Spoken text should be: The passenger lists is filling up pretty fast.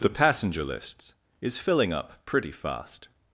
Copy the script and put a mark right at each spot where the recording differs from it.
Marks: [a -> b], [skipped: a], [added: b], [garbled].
The passenger lists is filling up pretty fast.